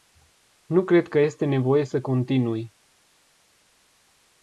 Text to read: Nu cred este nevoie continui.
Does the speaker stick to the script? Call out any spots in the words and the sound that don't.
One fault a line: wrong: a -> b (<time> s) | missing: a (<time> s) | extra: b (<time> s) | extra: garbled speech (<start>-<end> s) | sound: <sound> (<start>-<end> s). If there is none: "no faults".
extra: că (1.1 s)
extra: să (1.9 s)